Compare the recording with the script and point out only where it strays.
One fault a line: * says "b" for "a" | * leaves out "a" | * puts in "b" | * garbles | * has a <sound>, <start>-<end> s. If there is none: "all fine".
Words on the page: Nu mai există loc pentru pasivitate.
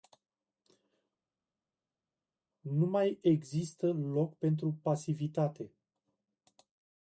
all fine